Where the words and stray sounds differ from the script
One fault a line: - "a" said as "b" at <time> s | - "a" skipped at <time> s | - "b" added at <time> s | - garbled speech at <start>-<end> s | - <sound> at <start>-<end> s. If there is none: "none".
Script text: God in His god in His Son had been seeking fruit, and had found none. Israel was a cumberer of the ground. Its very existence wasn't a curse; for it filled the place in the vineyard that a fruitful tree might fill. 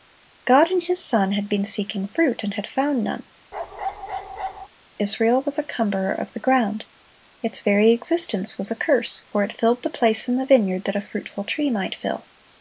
- "god in His" skipped at 1.1 s
- bark at 3.5-4.7 s
- "wasn't" said as "was" at 8.6 s